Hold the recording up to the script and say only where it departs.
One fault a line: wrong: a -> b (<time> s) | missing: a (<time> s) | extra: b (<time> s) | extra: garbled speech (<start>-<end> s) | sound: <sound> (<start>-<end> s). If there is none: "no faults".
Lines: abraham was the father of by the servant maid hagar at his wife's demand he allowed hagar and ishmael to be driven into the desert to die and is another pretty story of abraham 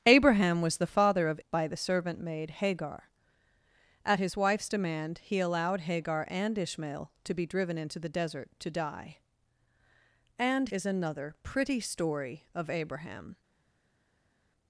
no faults